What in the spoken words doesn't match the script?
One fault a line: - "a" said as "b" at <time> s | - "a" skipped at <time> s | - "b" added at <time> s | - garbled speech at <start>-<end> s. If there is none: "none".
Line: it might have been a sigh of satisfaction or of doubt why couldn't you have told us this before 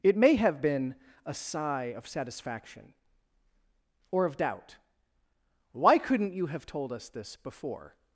- "might" said as "may" at 0.2 s